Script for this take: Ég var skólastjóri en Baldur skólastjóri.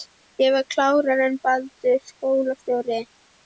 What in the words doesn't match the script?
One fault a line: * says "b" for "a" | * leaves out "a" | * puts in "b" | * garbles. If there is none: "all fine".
* says "klárari" for "skólastjóri"